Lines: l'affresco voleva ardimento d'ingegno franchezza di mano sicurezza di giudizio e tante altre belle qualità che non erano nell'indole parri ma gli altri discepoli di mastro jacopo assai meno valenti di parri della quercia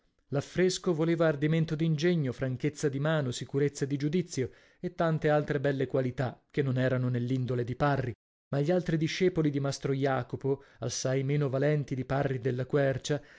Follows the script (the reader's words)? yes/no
no